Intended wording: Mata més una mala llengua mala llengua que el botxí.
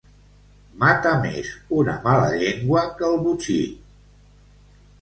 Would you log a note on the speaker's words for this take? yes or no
yes